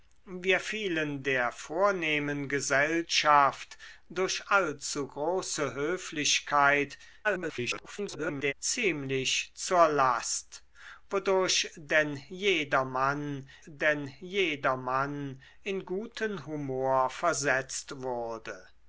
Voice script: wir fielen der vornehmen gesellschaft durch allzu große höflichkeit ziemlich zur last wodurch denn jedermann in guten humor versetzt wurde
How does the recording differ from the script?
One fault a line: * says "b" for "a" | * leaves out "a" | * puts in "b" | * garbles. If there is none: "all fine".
* garbles
* puts in "denn jedermann"